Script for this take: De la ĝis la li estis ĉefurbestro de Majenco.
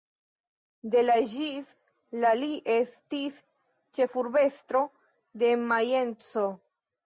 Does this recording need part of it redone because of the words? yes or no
no